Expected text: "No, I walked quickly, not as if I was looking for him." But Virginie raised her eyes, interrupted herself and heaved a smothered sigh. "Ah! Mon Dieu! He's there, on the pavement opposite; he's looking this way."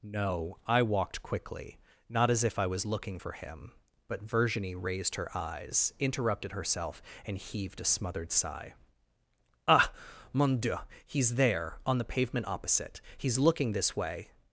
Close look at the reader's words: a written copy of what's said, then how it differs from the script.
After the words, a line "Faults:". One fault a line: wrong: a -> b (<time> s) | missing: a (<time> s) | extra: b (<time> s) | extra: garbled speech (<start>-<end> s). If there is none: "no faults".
"No, I walked quickly, not as if I was looking for him." But Virginie raised her eyes, interrupted herself and heaved a smothered sigh. "Ah! Mon Dieu! He's there, on the pavement opposite; he's looking this way."
Faults:
no faults